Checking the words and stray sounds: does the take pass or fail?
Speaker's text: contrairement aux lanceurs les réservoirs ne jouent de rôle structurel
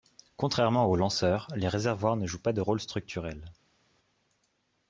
fail